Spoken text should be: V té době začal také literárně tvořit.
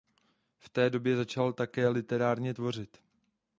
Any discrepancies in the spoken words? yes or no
no